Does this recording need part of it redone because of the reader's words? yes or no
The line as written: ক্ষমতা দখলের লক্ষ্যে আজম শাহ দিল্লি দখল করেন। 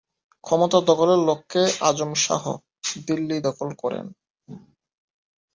no